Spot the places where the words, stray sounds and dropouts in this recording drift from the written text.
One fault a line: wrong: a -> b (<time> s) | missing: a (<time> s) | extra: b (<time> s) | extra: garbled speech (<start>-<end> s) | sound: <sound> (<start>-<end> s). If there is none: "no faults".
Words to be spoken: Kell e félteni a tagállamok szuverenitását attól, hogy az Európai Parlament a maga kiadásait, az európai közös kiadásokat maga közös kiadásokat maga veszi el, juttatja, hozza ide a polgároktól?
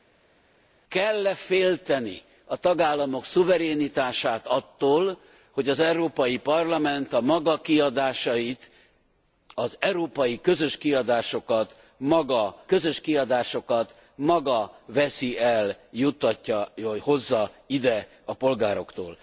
no faults